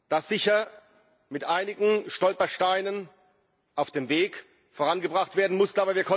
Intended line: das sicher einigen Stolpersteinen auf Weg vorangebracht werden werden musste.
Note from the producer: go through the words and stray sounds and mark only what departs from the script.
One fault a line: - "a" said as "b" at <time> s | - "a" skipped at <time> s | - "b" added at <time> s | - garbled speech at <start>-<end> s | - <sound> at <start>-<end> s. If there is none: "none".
- "mit" added at 1.3 s
- "dem" added at 3.9 s
- "werden" skipped at 5.6 s